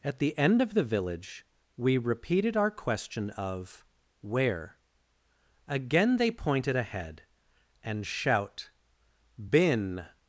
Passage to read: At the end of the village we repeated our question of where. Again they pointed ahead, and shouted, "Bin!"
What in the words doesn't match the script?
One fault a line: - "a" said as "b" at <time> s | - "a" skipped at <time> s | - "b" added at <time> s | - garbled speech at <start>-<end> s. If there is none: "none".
- "shouted" said as "shout" at 8.1 s